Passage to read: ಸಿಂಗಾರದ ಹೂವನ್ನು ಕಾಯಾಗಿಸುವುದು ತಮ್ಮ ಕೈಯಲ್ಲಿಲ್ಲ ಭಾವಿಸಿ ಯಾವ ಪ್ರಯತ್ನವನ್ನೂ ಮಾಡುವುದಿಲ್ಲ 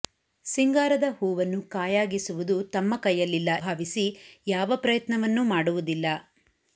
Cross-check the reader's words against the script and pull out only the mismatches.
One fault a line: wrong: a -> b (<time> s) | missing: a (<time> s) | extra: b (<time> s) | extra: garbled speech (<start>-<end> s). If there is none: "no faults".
no faults